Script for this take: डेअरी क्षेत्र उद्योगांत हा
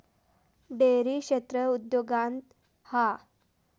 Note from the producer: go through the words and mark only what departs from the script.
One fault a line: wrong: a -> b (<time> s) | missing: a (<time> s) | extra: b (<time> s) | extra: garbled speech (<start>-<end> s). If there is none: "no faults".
no faults